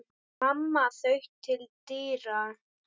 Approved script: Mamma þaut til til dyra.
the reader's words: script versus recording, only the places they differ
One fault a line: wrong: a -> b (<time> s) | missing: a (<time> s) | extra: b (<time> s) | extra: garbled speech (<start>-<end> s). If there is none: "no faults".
missing: til (1.7 s)